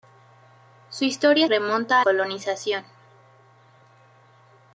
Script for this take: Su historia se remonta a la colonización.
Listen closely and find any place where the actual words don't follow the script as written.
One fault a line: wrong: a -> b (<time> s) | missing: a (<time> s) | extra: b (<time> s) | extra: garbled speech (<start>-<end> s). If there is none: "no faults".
missing: se (1.5 s)
missing: la (2.1 s)